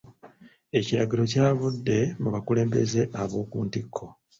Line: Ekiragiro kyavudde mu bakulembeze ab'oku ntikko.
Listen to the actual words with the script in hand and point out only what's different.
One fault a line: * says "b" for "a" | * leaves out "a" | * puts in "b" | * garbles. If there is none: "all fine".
all fine